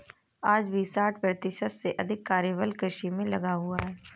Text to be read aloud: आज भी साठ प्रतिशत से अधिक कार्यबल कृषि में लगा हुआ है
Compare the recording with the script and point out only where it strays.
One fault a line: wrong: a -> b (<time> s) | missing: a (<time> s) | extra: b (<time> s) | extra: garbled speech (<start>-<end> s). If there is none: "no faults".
no faults